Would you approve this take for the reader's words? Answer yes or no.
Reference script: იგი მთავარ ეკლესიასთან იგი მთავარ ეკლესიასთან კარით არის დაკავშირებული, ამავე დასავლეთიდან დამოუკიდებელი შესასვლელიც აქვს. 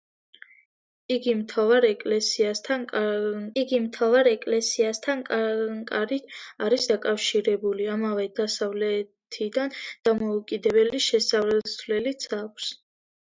yes